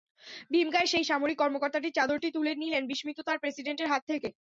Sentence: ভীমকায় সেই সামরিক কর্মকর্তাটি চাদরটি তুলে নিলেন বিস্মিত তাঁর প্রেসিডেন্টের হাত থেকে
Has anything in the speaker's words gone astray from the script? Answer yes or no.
no